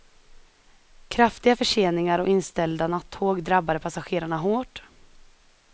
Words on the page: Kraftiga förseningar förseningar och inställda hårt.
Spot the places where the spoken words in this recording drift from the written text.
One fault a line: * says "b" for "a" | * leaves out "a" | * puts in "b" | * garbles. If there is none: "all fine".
* leaves out "förseningar"
* puts in "nattåg drabbade passagerarna"